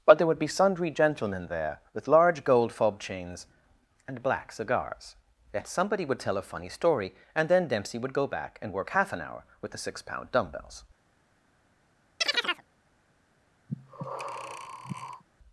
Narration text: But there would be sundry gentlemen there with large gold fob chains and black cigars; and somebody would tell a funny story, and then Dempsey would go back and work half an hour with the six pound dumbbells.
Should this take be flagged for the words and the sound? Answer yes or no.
yes